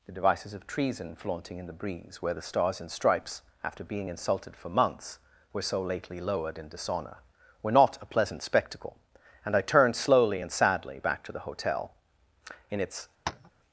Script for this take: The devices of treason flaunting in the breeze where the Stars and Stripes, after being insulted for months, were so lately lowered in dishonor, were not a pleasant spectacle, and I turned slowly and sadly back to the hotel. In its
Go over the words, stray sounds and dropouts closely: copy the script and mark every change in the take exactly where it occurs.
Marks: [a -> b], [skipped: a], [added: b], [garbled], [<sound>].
The devices of treason flaunting in the breeze where the Stars and Stripes, after being insulted for months, were so lately lowered in dishonor, were not a pleasant spectacle, and I turned slowly and sadly back to the hotel. In its [tap]